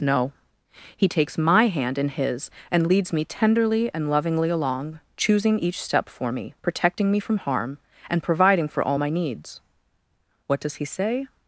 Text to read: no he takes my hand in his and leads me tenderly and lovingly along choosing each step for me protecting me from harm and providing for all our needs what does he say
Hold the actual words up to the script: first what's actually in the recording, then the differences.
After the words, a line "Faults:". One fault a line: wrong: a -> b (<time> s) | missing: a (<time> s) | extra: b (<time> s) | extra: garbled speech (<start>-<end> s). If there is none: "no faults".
no he takes my hand in his and leads me tenderly and lovingly along choosing each step for me protecting me from harm and providing for all my needs what does he say
Faults:
wrong: our -> my (8.9 s)